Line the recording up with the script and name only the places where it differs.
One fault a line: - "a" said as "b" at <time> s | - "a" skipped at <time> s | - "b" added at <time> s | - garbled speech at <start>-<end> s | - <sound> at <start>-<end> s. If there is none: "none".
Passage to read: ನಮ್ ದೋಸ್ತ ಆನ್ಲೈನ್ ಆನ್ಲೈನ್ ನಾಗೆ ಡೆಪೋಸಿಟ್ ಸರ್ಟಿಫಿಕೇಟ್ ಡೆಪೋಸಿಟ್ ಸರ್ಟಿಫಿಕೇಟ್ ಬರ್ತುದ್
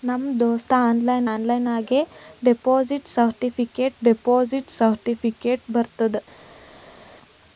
none